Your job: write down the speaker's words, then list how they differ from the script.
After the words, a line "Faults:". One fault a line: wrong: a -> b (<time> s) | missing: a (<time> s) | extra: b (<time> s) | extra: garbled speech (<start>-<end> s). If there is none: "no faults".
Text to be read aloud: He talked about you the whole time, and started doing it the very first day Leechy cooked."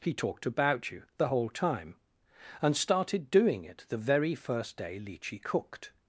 He talked about you the whole time, and started doing it the very first day Leechy cooked."
Faults:
no faults